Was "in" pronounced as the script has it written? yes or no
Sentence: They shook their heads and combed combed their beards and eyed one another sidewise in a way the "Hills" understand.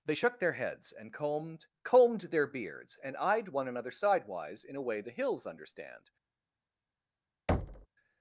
yes